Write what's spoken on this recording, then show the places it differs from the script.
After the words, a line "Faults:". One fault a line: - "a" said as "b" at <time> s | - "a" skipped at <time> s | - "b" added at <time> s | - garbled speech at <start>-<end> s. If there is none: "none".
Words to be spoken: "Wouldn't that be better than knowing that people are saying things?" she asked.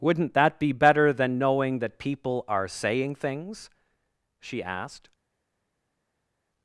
"Wouldn't that be better than knowing that people are saying things?" she asked.
Faults:
none